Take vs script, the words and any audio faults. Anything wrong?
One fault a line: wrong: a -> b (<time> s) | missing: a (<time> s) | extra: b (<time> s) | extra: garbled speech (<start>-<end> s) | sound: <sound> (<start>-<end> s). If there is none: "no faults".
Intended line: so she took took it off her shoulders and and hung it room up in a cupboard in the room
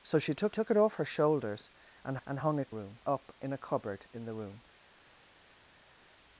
no faults